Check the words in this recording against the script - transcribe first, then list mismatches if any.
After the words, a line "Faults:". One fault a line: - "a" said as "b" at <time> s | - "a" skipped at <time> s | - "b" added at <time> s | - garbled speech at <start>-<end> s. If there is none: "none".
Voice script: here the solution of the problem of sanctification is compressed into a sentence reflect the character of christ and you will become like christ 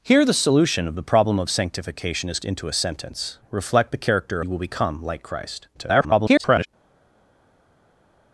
here the solution of the problem of sanctification is into a sentence reflect the character you will become like christ [garbled]
Faults:
- "compressed" skipped at 2.4 s
- "of christ and" skipped at 4.4 s
- garbled speech at 5.7-6.7 s